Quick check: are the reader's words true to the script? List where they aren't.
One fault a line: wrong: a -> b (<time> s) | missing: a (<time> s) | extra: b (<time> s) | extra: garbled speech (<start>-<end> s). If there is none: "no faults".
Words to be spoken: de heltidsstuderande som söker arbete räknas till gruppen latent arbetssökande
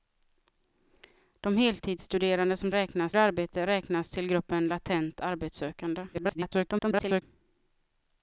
wrong: söker -> räknas (2.7 s)
extra: garbled speech (6.1-7.2 s)